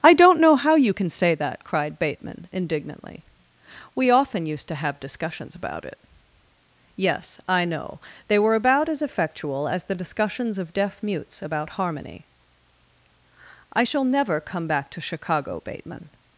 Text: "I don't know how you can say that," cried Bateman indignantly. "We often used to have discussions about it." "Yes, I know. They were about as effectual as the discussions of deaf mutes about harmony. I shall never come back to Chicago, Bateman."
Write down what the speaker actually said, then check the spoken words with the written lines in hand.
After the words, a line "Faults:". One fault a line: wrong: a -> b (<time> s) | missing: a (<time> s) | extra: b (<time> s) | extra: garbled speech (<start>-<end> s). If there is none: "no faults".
"I don't know how you can say that," cried Bateman indignantly. "We often used to have discussions about it." "Yes, I know. They were about as effectual as the discussions of deaf mutes about harmony. I shall never come back to Chicago, Bateman."
Faults:
no faults